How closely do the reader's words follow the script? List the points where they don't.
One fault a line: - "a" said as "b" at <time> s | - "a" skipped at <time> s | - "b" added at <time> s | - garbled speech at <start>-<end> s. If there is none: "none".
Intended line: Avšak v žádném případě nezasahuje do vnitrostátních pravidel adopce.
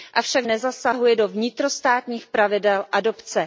- "žádném případě" skipped at 0.5 s